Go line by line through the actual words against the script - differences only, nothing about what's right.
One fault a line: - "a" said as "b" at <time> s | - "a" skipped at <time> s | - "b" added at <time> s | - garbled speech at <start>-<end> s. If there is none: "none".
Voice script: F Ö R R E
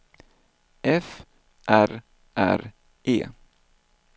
- "Ö" skipped at 1.1 s